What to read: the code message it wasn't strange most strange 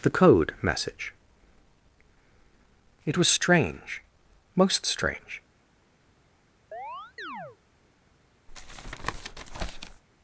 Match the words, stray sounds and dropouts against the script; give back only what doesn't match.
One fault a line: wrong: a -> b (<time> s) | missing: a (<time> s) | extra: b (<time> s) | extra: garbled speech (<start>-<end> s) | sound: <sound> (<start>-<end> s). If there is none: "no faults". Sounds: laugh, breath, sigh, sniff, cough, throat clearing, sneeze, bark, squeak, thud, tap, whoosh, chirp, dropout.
wrong: wasn't -> was (3.2 s)
sound: chirp (6.7-7.6 s)
sound: tap (8.5-10.0 s)